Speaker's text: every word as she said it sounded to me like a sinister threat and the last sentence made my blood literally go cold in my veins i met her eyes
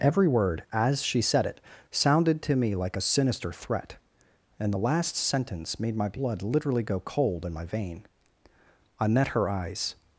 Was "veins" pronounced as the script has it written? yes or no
no